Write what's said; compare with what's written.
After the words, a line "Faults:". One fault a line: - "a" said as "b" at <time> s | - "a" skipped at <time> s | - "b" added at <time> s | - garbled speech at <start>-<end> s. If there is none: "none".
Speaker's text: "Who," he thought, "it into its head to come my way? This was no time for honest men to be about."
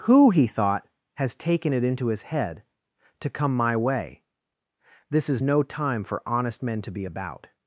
"Who," he thought, "has taken it into his head to come my way? This is no time for honest men to be about."
Faults:
- "has taken" added at 1.1 s
- "its" said as "his" at 2.1 s
- "was" said as "is" at 5.3 s